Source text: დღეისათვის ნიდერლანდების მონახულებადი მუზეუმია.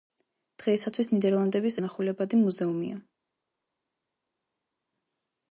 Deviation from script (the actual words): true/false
false